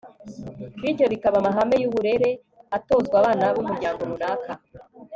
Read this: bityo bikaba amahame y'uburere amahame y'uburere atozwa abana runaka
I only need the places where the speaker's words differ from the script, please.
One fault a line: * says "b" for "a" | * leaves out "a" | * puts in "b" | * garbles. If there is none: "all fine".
* leaves out "amahame y'uburere"
* puts in "b'umuryango"